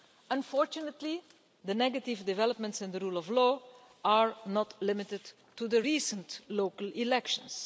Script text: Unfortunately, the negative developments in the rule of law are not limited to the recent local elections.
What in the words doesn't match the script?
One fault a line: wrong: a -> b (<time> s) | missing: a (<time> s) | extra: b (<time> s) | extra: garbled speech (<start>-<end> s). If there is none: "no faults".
no faults